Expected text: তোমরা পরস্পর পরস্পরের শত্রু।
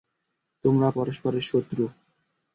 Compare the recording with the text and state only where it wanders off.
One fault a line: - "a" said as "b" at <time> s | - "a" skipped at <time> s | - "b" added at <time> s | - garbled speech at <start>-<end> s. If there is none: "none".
- "পরস্পর" skipped at 0.9 s